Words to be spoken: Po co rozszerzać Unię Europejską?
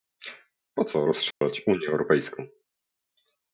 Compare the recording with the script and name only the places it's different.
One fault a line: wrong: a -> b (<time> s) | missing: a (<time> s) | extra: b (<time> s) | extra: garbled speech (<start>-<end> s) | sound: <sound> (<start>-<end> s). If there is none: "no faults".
sound: dropout (1.3-1.4 s)